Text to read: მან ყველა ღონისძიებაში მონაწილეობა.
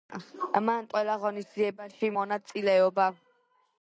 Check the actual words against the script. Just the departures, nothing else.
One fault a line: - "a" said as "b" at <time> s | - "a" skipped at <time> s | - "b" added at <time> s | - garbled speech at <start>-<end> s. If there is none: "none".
none